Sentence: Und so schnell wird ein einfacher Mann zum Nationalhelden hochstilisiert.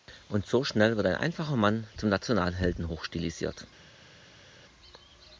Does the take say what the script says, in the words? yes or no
yes